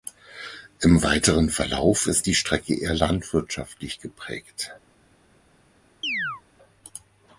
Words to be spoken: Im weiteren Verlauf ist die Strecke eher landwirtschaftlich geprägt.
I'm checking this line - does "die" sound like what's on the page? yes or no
yes